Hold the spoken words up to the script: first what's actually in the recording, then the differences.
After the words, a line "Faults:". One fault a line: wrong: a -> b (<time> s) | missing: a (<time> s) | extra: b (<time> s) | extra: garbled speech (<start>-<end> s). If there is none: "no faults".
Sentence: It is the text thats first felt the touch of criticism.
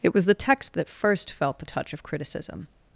It was the text that first felt the touch of criticism.
Faults:
wrong: is -> was (0.1 s)
wrong: thats -> that (0.7 s)